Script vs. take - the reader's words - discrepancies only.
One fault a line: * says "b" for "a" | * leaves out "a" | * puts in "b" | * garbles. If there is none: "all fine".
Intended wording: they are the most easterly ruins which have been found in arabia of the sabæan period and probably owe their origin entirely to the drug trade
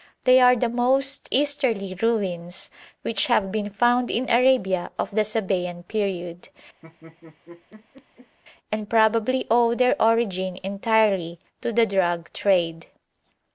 all fine